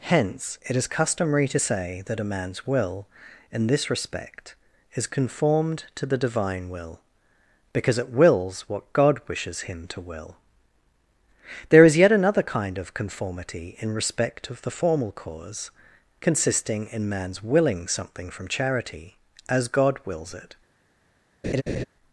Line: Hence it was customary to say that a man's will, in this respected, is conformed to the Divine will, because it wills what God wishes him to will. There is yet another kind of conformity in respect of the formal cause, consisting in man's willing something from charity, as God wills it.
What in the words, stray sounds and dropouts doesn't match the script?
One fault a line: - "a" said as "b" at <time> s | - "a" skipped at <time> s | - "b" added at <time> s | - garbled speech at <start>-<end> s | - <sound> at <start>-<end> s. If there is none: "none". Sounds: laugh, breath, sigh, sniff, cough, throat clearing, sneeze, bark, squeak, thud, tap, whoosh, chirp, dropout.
- "was" said as "is" at 0.8 s
- "respected" said as "respect" at 3.9 s
- laugh at 21.4-21.8 s